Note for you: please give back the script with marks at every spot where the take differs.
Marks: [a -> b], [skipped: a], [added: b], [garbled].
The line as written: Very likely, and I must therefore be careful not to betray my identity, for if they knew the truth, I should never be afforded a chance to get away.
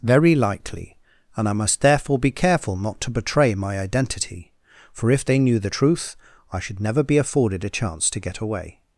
Very likely, and I must therefore be careful not to betray my identity, for if they knew the truth, I should never be afforded a chance to get away.